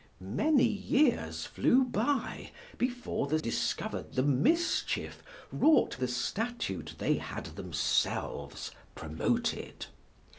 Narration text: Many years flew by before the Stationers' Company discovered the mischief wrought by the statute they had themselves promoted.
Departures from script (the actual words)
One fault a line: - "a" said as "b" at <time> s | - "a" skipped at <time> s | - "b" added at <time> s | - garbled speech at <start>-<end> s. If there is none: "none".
- "Stationers Company" skipped at 3.4 s
- "by" skipped at 6.0 s